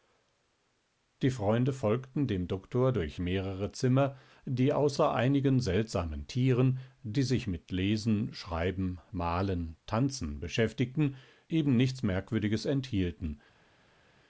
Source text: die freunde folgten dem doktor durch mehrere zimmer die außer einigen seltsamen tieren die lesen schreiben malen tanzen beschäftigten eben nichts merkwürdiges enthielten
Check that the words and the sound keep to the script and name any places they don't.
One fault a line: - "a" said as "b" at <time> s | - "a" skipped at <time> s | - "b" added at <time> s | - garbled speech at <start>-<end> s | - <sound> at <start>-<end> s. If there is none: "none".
- "sich mit" added at 7.2 s